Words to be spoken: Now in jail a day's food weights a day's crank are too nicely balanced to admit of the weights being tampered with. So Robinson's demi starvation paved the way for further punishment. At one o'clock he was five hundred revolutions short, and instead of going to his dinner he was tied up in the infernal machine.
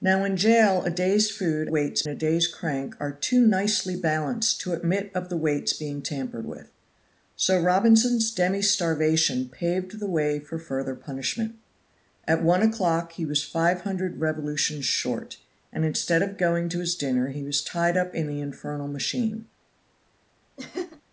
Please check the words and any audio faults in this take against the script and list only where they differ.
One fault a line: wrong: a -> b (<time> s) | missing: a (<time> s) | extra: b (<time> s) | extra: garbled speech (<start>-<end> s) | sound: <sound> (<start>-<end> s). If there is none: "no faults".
sound: laugh (20.6-21.0 s)